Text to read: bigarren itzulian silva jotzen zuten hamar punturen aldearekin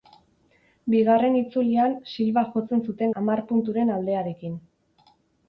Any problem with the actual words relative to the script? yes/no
no